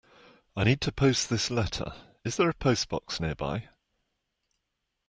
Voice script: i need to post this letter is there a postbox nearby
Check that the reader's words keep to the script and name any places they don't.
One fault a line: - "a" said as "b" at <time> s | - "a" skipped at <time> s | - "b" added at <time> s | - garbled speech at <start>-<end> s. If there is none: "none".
none